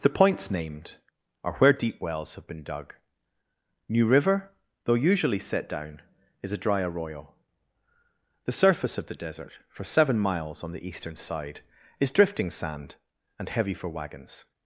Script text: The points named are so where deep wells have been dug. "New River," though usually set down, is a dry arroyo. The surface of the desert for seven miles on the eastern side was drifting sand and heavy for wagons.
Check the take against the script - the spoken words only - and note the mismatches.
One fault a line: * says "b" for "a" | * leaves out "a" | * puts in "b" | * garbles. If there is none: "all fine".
* leaves out "so"
* says "is" for "was"